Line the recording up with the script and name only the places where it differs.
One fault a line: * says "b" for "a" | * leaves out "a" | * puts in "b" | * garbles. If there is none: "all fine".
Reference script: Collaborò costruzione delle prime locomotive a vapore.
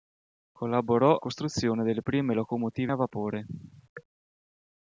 all fine